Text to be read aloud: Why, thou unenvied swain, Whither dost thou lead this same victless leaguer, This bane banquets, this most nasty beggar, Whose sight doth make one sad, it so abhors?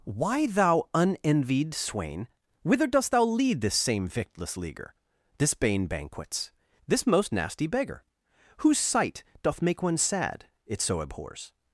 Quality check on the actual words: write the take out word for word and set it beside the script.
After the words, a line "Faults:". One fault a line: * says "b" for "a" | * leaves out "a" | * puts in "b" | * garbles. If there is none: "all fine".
Why, thou unenvied swain, Whither dost thou lead this same victless leaguer, This bane banquets, this most nasty beggar, Whose sight doth make one sad, it so abhors?
Faults:
all fine